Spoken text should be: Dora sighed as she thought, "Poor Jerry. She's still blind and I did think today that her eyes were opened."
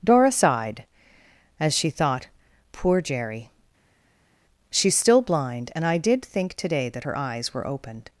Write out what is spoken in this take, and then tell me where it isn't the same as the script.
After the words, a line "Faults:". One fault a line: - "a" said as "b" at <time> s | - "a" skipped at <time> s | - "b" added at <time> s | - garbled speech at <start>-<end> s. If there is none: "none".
Dora sighed as she thought, "Poor Jerry. She's still blind and I did think today that her eyes were opened."
Faults:
none